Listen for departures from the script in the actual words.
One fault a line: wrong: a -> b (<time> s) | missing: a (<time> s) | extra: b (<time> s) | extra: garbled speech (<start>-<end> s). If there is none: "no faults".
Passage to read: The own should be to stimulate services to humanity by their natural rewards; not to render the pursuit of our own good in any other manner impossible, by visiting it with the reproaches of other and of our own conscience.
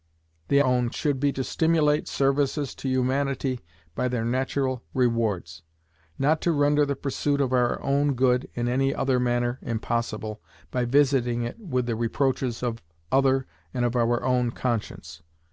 no faults